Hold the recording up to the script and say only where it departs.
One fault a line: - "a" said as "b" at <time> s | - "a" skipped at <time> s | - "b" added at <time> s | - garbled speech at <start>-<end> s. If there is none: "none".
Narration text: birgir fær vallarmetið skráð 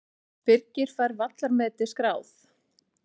none